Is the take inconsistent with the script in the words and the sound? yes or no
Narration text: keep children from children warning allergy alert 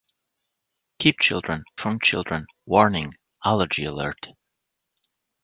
no